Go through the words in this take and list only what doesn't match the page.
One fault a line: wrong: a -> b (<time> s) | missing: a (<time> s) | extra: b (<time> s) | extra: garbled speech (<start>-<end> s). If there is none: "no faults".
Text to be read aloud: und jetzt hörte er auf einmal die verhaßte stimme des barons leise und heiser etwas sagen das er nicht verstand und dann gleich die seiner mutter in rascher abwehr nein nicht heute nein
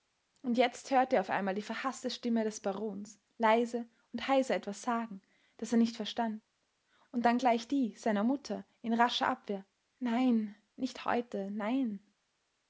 no faults